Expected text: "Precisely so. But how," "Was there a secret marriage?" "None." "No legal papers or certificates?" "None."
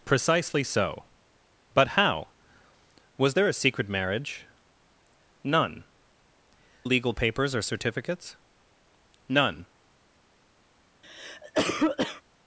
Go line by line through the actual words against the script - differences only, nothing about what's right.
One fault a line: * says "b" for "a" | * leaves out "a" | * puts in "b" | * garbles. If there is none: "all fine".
* leaves out "No"